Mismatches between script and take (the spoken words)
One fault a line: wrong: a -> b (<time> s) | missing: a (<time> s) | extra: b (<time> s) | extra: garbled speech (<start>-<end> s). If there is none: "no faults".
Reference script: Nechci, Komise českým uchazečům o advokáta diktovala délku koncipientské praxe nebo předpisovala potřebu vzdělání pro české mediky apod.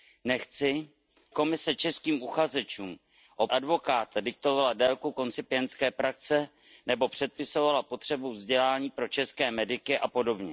no faults